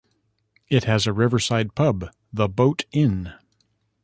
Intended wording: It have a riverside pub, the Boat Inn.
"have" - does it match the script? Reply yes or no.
no